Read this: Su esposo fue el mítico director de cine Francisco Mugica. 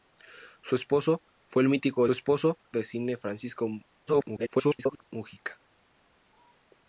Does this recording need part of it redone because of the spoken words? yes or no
yes